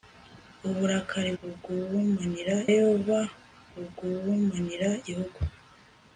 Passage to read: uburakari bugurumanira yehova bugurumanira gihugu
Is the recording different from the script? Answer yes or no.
no